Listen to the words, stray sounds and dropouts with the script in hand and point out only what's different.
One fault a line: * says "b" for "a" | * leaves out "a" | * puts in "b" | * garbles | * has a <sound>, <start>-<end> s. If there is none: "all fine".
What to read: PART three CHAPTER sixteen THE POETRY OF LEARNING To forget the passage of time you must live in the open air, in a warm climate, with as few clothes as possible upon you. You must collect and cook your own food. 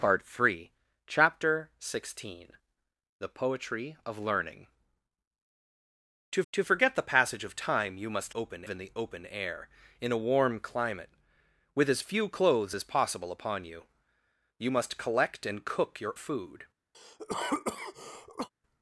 * puts in "To"
* says "open" for "live"
* leaves out "own"
* has a cough, 16.9-18.5 s